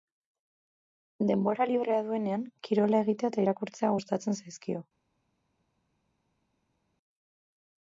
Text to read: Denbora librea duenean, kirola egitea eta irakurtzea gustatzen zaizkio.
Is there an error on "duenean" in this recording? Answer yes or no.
no